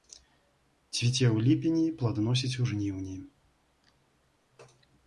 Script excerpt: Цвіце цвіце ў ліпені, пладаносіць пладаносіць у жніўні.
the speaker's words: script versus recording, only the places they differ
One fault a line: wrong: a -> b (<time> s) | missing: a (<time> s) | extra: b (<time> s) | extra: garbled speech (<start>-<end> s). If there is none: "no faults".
missing: цвіце (1.2 s)
missing: пладаносіць (2.6 s)